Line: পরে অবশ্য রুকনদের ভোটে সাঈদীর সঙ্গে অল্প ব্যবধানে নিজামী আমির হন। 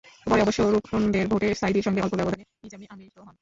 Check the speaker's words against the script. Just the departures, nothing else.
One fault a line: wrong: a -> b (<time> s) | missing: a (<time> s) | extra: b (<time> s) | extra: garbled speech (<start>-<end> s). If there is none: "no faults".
no faults